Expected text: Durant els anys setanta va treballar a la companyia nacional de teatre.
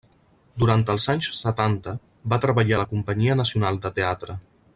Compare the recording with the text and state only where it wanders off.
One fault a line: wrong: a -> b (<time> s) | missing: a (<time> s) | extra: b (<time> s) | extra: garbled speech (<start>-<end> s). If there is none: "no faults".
no faults